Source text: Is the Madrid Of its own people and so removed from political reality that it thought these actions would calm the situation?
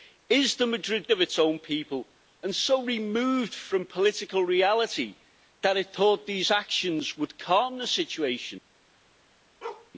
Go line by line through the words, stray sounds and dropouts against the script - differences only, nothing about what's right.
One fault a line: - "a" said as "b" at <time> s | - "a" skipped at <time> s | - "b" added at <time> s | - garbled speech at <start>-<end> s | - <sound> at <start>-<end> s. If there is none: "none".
- bark at 9.6-9.9 s